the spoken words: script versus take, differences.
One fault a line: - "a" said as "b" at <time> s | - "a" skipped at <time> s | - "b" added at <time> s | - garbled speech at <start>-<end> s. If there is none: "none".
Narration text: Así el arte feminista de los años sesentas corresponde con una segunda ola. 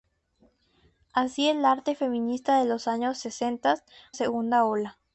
- "corresponde con una" skipped at 3.8 s